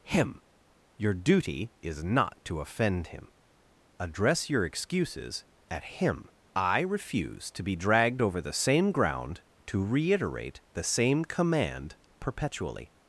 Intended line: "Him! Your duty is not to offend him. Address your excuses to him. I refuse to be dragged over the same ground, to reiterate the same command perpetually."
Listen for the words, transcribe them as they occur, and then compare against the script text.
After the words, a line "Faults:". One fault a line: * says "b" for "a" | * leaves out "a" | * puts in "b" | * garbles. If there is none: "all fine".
"Him! Your duty is not to offend him. Address your excuses at him. I refuse to be dragged over the same ground, to reiterate the same command perpetually."
Faults:
* says "at" for "to"